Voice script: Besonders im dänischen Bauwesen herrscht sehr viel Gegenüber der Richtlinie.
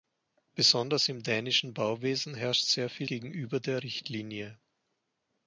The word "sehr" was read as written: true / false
true